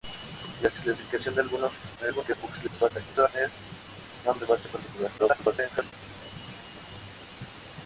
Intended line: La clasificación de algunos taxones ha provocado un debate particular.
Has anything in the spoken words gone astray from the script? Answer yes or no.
yes